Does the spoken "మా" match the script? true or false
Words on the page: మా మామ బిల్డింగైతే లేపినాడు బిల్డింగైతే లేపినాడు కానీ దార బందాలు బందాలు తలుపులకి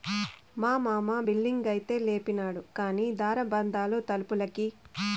true